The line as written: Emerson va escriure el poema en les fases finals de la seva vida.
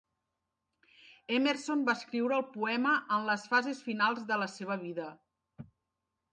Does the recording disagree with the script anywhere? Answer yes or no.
no